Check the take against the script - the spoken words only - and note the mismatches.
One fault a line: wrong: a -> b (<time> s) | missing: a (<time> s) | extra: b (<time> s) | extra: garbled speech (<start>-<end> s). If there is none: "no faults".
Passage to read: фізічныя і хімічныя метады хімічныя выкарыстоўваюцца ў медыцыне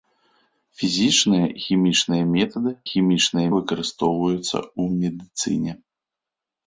no faults